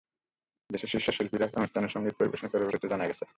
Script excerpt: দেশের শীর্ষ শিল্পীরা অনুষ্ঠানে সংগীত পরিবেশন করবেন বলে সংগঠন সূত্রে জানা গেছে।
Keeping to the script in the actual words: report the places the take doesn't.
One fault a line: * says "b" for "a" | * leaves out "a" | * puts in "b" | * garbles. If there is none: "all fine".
* leaves out "বলে সংগঠন"